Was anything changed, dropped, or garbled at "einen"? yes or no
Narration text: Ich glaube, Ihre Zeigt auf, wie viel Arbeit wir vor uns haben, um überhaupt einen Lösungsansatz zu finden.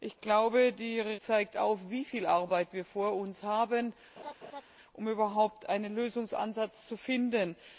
no